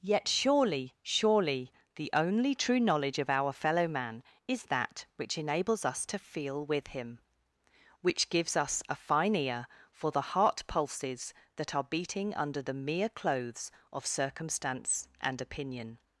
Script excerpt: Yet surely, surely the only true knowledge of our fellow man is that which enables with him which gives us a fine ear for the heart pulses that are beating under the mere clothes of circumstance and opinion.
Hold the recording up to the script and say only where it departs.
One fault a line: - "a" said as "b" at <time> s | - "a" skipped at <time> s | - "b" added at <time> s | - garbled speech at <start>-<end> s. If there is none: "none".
- "us to feel" added at 5.8 s